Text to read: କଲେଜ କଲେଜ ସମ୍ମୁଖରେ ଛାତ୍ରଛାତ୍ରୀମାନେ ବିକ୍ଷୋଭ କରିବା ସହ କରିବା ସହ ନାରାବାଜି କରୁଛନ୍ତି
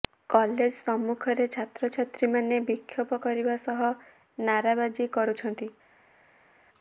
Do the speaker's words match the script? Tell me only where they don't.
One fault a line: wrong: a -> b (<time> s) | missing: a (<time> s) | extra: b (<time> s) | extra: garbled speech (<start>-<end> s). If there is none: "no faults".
missing: କଲେଜ (0.7 s)
missing: କରିବା ସହ (3.8 s)